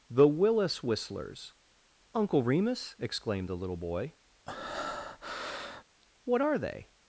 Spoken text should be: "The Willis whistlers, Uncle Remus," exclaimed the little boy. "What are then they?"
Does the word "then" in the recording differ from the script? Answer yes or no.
yes